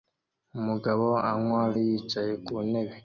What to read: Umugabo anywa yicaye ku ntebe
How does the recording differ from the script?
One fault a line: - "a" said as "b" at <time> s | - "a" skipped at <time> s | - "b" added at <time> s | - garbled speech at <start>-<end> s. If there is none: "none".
none